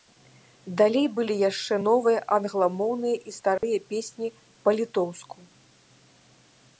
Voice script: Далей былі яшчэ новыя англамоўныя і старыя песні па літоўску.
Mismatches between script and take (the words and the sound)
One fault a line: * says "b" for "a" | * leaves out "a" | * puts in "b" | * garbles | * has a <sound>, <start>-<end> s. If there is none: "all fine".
* has a dropout, 3.6-3.6 s